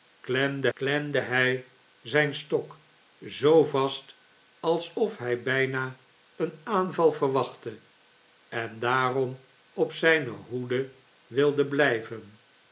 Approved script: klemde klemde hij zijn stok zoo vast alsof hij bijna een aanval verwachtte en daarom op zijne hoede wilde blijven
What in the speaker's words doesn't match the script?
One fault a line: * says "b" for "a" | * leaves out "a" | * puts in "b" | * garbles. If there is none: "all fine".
all fine